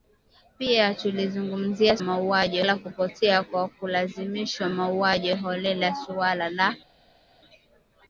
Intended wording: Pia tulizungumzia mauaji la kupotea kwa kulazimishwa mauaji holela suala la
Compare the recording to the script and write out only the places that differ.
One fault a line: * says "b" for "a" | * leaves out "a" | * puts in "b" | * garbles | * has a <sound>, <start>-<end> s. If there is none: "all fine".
all fine